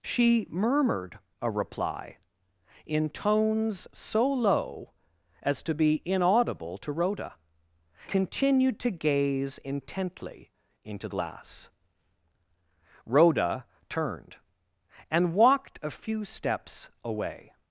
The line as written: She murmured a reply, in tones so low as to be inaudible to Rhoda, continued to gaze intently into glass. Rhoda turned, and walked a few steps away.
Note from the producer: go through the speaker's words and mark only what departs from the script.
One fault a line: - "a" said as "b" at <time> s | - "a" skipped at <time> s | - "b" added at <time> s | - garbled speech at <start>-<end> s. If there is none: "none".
none